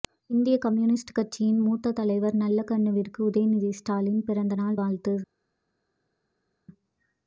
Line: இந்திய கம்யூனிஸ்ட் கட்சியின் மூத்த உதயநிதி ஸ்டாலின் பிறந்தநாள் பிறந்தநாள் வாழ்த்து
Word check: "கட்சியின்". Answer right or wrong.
right